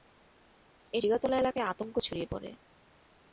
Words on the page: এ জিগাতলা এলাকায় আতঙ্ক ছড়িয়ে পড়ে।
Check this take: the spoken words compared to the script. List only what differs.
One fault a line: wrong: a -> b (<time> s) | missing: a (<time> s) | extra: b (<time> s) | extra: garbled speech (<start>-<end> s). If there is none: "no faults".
no faults